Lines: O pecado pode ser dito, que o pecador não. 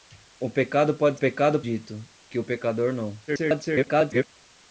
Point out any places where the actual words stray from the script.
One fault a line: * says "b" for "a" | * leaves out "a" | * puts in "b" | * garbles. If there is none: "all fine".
* says "pecado" for "ser"
* garbles